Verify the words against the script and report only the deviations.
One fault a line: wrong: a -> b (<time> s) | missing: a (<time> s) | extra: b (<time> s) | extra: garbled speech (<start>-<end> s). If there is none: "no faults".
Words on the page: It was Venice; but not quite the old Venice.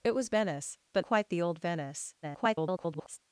missing: not (1.1 s)
extra: garbled speech (2.2-3.2 s)